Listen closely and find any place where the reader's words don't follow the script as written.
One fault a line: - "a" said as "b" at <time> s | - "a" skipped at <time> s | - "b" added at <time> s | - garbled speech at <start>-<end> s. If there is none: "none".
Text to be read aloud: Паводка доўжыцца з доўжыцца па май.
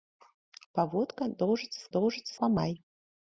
none